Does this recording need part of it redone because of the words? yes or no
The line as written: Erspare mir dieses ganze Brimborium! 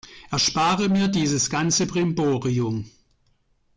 no